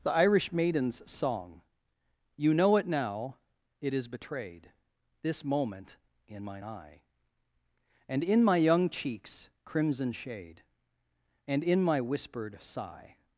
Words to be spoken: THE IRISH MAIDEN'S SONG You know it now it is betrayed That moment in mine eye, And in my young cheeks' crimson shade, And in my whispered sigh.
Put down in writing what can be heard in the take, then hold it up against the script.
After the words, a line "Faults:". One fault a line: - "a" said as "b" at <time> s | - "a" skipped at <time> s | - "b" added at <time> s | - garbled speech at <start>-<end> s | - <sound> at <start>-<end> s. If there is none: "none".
THE IRISH MAIDEN'S SONG You know it now it is betrayed This moment in mine eye, And in my young cheeks' crimson shade, And in my whispered sigh.
Faults:
- "That" said as "This" at 5.2 s